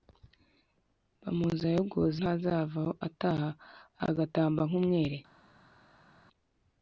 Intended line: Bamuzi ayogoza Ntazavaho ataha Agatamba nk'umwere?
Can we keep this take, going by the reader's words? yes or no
yes